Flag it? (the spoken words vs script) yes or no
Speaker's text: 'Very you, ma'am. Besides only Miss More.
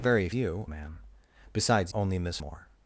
no